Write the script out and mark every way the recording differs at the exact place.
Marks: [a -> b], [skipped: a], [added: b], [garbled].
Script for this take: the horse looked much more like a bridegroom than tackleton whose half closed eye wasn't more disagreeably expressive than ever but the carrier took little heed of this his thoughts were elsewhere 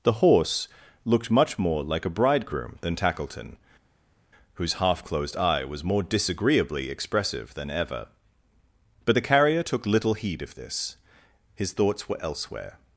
the horse looked much more like a bridegroom than tackleton whose half closed eye [wasn't -> was] more disagreeably expressive than ever but the carrier took little heed of this his thoughts were elsewhere